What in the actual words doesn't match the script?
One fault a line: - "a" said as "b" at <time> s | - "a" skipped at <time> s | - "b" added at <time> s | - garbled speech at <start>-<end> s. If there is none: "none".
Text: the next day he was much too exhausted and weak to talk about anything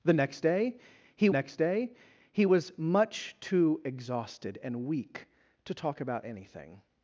- "next day he" added at 1.3 s